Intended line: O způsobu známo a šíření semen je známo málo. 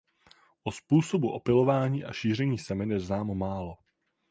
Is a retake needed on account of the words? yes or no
yes